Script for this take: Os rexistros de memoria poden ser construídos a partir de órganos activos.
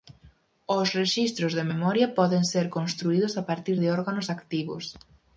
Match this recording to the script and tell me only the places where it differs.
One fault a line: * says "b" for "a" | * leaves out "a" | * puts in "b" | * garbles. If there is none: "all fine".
all fine